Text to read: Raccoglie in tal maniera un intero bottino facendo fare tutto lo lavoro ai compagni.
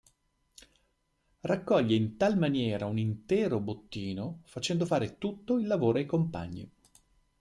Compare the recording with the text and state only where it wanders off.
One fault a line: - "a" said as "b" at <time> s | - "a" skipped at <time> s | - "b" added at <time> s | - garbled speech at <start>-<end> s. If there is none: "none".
- "lo" said as "il" at 5.6 s